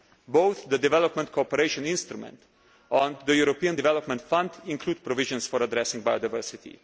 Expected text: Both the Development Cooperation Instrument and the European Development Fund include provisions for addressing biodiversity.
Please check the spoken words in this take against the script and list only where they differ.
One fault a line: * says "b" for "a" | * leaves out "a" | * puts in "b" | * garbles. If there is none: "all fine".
all fine